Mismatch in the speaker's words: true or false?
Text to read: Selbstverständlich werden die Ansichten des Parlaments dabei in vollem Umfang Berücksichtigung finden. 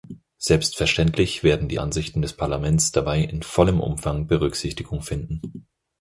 false